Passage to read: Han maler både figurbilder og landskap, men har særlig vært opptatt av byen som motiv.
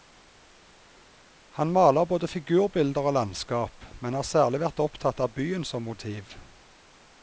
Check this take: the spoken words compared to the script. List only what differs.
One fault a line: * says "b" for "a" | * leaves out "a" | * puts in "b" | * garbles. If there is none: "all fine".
all fine